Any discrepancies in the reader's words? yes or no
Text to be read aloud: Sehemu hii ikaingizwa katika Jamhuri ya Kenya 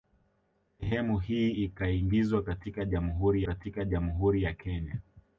yes